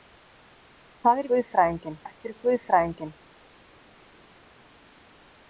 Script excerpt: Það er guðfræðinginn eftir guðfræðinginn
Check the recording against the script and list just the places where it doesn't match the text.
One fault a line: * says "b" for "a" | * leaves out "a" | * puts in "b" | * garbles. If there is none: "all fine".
all fine